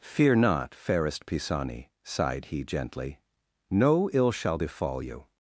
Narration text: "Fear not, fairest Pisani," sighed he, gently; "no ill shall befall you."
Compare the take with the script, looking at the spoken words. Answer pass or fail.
pass